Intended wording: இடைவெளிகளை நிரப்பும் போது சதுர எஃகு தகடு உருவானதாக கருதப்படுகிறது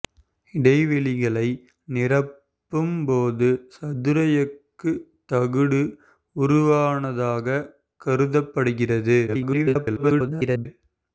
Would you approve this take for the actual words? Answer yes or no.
no